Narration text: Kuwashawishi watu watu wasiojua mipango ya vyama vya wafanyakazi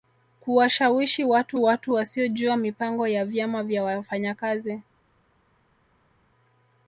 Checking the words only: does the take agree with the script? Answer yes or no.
yes